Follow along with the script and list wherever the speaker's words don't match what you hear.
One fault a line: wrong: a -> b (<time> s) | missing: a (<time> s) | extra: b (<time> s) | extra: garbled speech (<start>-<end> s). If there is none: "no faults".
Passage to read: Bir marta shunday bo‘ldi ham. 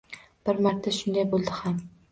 no faults